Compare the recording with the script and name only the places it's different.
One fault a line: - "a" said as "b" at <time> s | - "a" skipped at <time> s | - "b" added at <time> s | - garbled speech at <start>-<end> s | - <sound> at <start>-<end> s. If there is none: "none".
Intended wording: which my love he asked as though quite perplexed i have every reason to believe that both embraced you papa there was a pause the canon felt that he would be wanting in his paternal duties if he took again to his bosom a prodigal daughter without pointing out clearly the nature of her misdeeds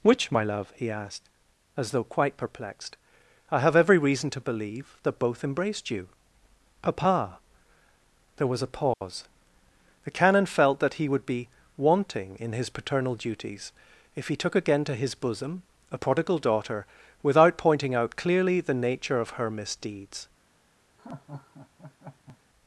- dropout at 8.9-9.0 s
- laugh at 21.0-22.4 s